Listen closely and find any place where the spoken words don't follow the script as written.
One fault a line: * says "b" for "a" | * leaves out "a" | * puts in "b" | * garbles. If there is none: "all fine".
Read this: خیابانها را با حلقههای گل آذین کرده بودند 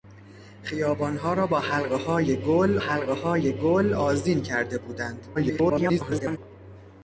* puts in "حلقههای گل"
* garbles